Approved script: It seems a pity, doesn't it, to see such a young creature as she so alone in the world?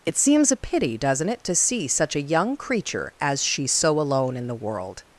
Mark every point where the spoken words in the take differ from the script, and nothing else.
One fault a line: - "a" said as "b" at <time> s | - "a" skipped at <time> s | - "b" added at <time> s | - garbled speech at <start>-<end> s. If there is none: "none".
none